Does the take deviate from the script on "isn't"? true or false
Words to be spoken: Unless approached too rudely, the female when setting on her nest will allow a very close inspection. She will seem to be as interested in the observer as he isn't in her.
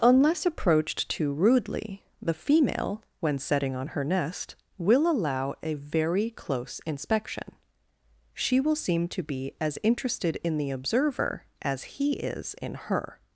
true